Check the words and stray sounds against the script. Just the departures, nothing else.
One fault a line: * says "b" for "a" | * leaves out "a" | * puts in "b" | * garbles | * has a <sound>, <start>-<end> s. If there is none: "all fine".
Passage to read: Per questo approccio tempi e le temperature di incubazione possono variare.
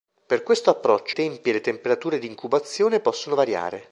all fine